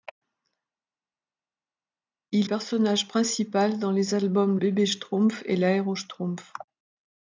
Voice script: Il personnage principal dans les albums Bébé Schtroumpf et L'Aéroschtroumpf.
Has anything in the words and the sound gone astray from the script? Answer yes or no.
no